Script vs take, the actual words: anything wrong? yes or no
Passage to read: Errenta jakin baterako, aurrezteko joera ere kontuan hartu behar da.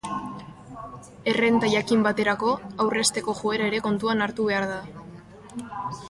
no